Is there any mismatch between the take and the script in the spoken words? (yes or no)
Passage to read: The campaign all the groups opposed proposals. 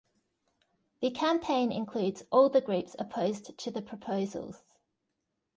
yes